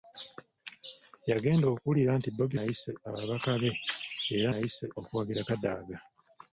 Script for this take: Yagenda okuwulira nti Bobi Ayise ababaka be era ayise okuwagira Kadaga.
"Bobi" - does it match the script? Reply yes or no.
yes